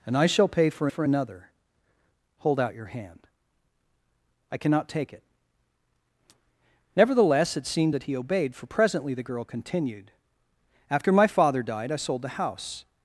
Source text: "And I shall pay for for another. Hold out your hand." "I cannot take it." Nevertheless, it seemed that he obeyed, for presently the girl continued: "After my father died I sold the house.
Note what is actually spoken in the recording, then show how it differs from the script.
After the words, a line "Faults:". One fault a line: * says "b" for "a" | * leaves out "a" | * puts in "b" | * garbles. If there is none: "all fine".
"And I shall pay for for another. Hold out your hand." "I cannot take it." Nevertheless, it seemed that he obeyed, for presently the girl continued: "After my father died I sold the house.
Faults:
all fine